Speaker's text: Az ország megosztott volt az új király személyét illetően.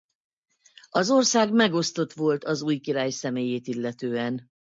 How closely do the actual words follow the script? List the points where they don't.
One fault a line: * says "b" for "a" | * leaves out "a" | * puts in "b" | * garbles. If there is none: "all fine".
all fine